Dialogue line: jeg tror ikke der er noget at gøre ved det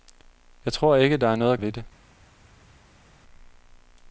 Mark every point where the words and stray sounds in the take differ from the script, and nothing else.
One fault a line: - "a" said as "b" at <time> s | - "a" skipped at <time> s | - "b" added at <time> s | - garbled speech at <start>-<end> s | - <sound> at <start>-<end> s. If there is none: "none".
- "gøre" skipped at 1.6 s